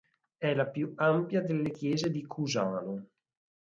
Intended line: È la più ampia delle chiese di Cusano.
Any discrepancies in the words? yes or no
no